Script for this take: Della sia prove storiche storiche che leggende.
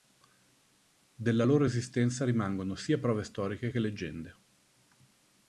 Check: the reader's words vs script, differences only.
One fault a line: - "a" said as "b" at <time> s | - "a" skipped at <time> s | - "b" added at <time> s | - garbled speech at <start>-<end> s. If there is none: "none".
- "loro esistenza rimangono" added at 1.4 s
- "storiche" skipped at 3.7 s